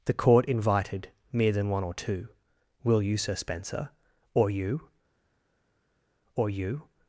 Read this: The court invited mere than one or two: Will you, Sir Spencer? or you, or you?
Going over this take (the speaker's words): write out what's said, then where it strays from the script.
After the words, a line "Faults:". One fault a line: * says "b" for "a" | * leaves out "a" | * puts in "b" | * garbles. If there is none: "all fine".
The court invited mere than one or two: Will you, Sir Spencer? or you, or you?
Faults:
all fine